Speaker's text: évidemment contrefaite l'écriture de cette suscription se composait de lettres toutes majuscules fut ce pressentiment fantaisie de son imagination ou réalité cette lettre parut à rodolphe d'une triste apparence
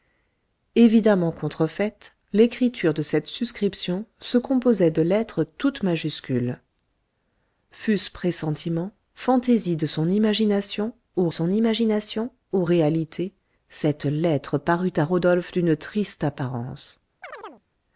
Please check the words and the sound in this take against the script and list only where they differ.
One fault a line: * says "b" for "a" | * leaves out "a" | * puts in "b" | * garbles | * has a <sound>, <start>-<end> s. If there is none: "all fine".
* puts in "son imagination ou"
* has a chirp, 17.2-17.6 s